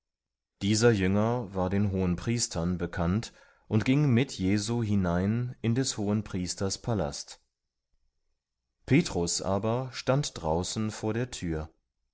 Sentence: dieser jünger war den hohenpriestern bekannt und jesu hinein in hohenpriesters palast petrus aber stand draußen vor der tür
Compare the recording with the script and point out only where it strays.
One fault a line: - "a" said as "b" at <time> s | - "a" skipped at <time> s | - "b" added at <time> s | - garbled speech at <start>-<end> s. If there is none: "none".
- "ging mit" added at 3.9 s
- "des" added at 5.8 s